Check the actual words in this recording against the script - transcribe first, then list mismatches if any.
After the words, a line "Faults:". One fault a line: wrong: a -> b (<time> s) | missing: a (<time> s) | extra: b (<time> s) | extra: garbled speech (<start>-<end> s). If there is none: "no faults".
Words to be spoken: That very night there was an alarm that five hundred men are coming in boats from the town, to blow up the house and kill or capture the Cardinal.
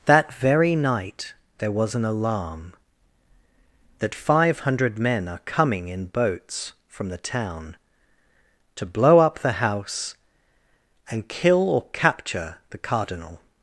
That very night there was an alarm that five hundred men are coming in boats from the town, to blow up the house and kill or capture the Cardinal.
Faults:
no faults